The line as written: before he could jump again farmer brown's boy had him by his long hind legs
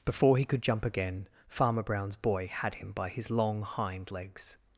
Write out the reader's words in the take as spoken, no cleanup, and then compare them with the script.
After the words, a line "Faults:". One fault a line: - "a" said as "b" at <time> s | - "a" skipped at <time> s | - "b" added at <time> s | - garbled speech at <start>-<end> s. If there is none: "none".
before he could jump again farmer brown's boy had him by his long hind legs
Faults:
none